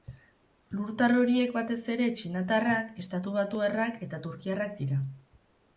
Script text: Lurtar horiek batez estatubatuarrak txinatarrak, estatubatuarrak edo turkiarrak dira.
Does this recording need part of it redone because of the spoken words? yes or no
yes